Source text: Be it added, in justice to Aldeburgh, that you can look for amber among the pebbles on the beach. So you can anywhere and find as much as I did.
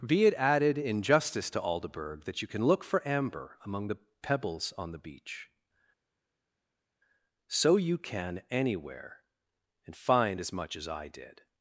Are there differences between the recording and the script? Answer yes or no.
no